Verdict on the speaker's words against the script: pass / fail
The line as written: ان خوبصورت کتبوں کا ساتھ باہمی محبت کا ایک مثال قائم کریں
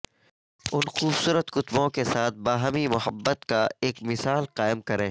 fail